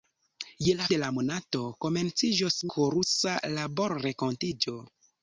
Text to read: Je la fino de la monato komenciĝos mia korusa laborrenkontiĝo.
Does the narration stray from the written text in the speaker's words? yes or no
yes